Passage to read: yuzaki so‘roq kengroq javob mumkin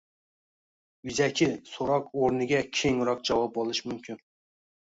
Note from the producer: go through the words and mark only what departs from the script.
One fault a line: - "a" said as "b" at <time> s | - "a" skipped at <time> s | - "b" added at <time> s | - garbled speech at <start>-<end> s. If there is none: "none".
- "o‘rniga" added at 2.2 s
- "olish" added at 3.6 s